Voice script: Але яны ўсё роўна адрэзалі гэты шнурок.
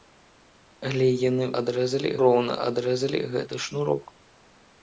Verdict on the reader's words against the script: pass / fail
fail